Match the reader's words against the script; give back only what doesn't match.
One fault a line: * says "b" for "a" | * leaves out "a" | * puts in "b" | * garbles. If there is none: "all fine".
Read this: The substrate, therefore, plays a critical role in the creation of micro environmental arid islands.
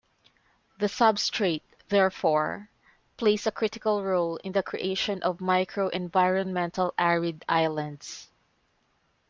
all fine